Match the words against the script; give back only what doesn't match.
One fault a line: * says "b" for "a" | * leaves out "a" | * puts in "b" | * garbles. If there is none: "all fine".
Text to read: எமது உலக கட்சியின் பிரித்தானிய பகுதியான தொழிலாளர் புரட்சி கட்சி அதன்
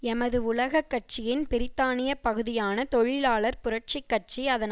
all fine